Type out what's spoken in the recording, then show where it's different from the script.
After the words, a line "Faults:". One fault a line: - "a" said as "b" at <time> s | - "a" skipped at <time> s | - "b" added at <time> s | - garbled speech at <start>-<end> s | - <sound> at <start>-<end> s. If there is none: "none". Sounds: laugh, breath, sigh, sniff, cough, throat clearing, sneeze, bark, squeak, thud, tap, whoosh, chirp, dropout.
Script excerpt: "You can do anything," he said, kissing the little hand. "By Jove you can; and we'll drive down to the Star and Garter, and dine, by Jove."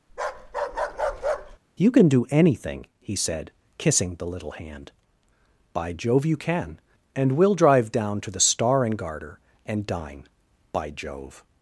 "You can do anything," he said, kissing the little hand. "By Jove you can; and we'll drive down to the Star and Garter, and dine, by Jove."
Faults:
- bark at 0.1-1.6 s